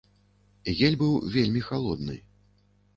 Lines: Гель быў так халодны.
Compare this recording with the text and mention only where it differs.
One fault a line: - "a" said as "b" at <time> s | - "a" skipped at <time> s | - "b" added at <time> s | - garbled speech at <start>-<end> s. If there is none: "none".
- "так" said as "вельмі" at 1.3 s